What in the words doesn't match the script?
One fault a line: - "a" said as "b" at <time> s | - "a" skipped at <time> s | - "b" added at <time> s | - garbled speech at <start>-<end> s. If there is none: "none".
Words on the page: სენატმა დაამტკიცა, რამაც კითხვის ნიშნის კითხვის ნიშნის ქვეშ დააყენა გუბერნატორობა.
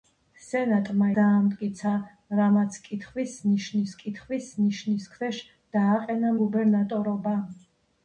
none